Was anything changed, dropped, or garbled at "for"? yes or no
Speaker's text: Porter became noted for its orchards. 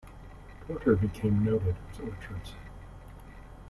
yes